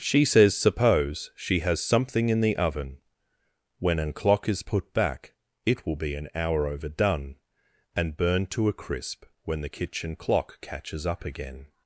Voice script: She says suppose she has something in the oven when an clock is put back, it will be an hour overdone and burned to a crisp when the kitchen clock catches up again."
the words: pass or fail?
pass